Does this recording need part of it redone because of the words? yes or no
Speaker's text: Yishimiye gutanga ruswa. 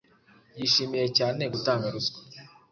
yes